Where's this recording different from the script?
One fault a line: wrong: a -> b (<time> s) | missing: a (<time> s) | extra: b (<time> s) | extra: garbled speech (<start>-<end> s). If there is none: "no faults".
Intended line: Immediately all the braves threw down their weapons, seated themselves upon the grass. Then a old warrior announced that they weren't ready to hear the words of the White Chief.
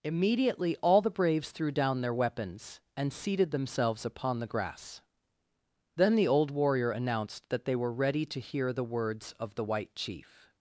extra: and (2.9 s)
wrong: a -> the (6.1 s)
wrong: weren't -> were (7.7 s)